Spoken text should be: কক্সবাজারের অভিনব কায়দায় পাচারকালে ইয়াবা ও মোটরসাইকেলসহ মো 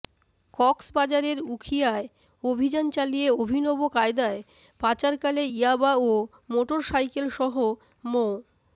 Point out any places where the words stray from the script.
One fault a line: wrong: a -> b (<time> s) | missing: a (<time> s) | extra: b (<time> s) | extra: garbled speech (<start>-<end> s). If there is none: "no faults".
extra: উখিয়ায় অভিযান চালিয়ে (1.5 s)